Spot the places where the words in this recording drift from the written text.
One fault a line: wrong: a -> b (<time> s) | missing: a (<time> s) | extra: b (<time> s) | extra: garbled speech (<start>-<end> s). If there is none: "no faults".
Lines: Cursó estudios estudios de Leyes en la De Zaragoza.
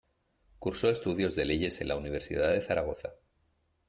missing: estudios (1.4 s)
extra: Universidad (1.9 s)